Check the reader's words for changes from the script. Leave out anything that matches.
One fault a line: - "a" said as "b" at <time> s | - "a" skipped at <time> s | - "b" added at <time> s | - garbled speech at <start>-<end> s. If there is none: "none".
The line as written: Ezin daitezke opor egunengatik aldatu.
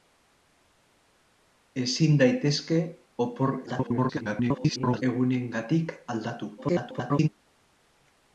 - garbled speech at 3.7-5.0 s
- garbled speech at 6.6-7.3 s